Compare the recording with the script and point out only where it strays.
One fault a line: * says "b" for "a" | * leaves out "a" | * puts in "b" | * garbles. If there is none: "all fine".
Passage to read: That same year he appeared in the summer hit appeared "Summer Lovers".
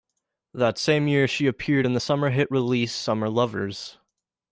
* says "she" for "he"
* says "release" for "appeared"